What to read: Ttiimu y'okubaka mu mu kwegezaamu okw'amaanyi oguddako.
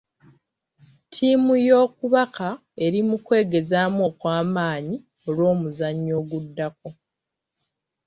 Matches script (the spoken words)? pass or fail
fail